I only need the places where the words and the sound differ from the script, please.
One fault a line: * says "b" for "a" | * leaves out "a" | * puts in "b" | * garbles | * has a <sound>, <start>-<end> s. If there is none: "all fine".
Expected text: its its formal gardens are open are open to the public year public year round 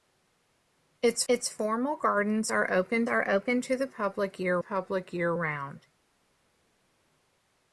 all fine